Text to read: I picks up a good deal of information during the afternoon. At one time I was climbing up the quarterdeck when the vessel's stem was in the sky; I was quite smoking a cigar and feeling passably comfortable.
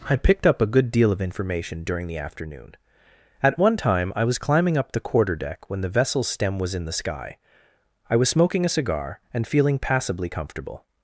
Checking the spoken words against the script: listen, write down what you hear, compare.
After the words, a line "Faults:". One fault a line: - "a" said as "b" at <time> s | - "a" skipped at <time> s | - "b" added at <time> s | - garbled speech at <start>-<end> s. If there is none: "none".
I picked up a good deal of information during the afternoon. At one time I was climbing up the quarterdeck when the vessel's stem was in the sky; I was smoking a cigar and feeling passably comfortable.
Faults:
- "picks" said as "picked" at 0.1 s
- "quite" skipped at 8.3 s